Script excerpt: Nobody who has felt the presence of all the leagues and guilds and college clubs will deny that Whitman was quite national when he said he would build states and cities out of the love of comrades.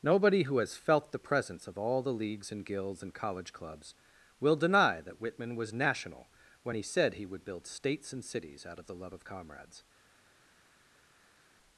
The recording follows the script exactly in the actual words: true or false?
false